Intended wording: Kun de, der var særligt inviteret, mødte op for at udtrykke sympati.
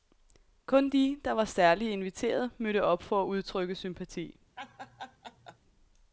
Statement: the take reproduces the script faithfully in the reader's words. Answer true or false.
true